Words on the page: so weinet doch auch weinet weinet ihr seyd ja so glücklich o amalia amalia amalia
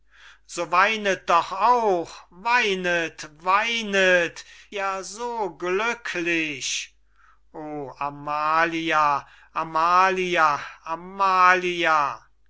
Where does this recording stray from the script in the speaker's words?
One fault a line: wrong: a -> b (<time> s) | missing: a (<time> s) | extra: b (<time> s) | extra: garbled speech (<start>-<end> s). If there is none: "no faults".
missing: ihr seyd (4.5 s)